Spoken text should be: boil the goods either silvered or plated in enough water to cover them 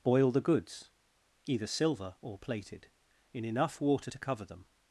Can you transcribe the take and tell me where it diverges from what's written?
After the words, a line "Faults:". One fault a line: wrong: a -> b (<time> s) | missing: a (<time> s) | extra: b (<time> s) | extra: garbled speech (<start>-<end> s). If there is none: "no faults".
boil the goods either silver or plated in enough water to cover them
Faults:
wrong: silvered -> silver (1.7 s)